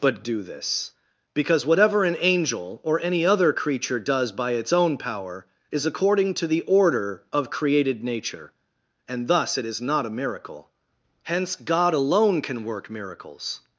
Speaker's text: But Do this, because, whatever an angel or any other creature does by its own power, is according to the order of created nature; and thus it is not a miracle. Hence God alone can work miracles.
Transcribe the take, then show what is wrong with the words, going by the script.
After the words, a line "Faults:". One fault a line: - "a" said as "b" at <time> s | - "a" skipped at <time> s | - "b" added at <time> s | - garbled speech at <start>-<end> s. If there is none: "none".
But Do this, because, whatever an angel or any other creature does by its own power, is according to the order of created nature; and thus it is not a miracle. Hence God alone can work miracles.
Faults:
none